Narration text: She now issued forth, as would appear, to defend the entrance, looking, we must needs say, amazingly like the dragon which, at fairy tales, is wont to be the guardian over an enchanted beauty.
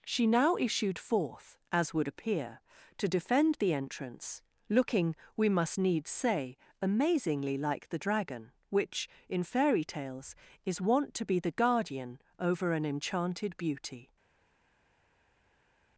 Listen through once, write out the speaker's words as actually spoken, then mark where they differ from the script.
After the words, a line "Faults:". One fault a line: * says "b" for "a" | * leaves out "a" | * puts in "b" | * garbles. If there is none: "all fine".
She now issued forth, as would appear, to defend the entrance, looking, we must needs say, amazingly like the dragon which, in fairy tales, is wont to be the guardian over an enchanted beauty.
Faults:
* says "in" for "at"